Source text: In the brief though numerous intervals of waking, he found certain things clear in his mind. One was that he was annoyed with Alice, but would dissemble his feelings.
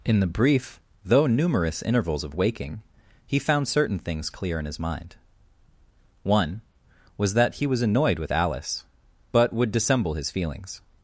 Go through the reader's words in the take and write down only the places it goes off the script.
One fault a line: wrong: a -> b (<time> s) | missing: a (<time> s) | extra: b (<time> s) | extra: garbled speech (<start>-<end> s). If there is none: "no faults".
no faults